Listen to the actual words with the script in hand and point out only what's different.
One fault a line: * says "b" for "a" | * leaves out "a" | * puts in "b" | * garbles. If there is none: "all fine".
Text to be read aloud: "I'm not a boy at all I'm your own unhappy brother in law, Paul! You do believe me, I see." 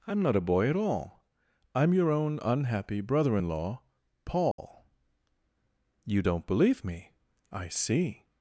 * says "don't" for "do"